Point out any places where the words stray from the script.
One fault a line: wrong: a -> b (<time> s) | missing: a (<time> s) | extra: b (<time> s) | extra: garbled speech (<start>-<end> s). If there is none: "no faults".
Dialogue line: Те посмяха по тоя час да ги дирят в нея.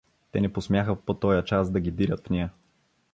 extra: не (0.4 s)